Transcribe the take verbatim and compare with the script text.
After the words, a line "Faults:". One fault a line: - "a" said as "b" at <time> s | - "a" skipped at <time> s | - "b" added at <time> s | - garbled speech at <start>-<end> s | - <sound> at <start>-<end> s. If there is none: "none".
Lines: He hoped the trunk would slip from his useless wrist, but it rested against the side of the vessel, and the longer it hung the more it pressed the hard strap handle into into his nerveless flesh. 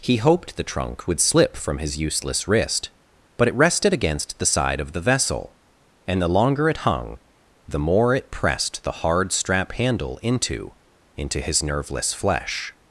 He hoped the trunk would slip from his useless wrist, but it rested against the side of the vessel, and the longer it hung the more it pressed the hard strap handle into into his nerveless flesh.
Faults:
none